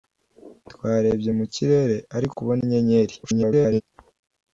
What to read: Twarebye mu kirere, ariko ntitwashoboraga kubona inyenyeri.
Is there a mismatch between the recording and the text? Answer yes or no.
yes